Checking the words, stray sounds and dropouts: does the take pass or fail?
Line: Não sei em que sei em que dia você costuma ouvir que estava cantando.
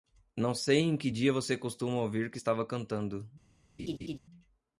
fail